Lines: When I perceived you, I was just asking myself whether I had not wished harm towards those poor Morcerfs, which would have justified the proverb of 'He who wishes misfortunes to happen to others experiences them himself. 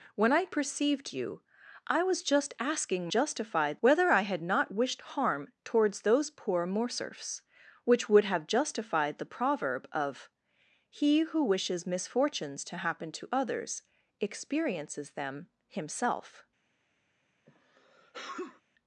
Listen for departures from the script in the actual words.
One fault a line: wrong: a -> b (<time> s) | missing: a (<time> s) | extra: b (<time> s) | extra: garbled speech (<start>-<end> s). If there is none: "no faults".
wrong: myself -> justified (3.1 s)